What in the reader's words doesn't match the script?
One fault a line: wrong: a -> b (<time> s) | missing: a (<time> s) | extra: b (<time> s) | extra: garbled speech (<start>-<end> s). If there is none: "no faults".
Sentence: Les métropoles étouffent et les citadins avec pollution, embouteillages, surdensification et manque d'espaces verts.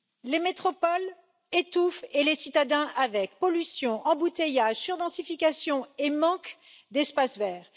no faults